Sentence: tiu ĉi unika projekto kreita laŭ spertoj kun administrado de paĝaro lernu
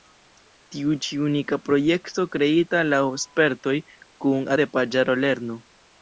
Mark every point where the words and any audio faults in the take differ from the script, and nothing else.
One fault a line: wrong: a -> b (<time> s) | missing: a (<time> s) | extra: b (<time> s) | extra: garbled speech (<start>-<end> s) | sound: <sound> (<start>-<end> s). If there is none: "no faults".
missing: administrado (4.5 s)